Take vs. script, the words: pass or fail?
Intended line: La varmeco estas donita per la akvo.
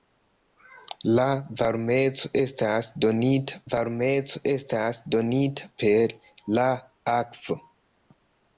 fail